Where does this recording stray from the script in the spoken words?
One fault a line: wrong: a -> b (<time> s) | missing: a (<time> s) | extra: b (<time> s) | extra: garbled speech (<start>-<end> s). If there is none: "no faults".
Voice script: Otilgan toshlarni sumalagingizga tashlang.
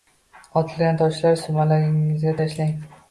no faults